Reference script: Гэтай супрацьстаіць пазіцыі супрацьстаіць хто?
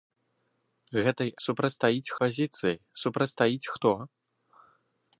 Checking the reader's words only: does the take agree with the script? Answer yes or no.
yes